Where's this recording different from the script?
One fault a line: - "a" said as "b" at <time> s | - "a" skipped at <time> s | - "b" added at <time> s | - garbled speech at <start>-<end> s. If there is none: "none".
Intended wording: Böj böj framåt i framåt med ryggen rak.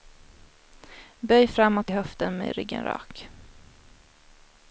- "böj" skipped at 1.5 s
- "framåt" said as "höften" at 1.9 s